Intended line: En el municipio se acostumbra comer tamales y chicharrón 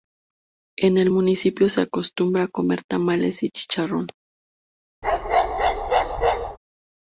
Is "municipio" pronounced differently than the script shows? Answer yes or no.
no